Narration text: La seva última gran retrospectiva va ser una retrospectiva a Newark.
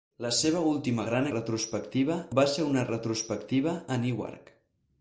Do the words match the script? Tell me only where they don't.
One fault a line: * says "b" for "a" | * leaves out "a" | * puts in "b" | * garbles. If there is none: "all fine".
all fine